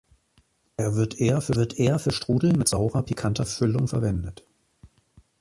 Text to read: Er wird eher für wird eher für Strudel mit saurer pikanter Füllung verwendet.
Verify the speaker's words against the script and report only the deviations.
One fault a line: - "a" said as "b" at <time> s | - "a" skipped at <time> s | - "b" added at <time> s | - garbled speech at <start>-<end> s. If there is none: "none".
none